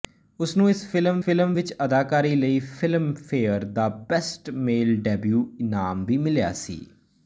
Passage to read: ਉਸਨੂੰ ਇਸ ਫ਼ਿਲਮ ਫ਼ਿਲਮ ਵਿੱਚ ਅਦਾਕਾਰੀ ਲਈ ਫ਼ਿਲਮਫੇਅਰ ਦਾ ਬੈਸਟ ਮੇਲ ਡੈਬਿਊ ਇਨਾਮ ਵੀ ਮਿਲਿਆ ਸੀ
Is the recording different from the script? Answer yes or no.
no